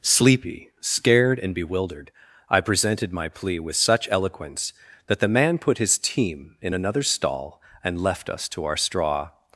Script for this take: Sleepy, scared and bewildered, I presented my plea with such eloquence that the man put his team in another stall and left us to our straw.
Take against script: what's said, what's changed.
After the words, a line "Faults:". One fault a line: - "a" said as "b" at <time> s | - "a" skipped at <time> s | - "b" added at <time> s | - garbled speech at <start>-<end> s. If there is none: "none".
Sleepy, scared and bewildered, I presented my plea with such eloquence that the man put his team in another stall and left us to our straw.
Faults:
none